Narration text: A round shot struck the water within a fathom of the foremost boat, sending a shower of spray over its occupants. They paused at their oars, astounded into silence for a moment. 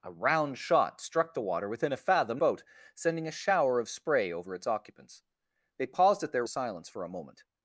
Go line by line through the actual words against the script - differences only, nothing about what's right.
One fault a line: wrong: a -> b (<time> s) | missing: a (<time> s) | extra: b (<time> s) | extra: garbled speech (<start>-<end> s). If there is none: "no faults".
missing: of the foremost (2.4 s)
missing: oars astounded into (6.5 s)